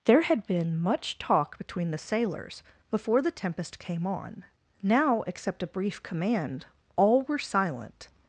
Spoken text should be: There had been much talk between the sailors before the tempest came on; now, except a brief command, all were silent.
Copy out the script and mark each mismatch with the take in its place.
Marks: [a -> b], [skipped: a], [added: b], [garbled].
There had been much talk between the sailors before the tempest came on; now, except a brief command, all were silent.